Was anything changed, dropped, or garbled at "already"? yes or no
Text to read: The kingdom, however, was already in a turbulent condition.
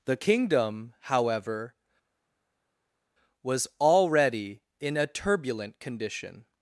no